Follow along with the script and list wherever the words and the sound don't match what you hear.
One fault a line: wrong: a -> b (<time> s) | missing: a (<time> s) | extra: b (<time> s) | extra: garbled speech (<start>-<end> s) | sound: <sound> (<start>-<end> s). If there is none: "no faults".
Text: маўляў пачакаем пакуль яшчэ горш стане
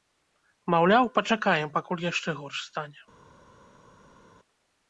no faults